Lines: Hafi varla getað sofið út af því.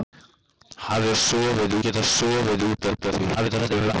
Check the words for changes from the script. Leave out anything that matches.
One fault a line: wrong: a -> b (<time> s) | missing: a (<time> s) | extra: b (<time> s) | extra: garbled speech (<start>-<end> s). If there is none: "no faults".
wrong: varla -> sofið (1.2 s)
extra: út (2.9 s)
extra: garbled speech (3.3-3.9 s)